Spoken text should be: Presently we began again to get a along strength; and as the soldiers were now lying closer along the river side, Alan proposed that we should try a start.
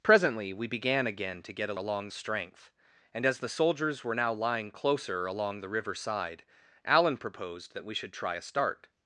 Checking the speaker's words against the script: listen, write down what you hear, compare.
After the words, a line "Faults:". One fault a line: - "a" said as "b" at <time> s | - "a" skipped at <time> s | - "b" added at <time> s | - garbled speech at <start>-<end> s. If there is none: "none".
Presently we began again to get a along strength; and as the soldiers were now lying closer along the river side, Alan proposed that we should try a start.
Faults:
none